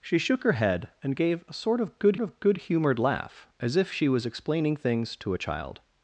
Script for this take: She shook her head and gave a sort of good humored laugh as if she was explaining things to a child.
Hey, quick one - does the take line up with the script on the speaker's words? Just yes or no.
no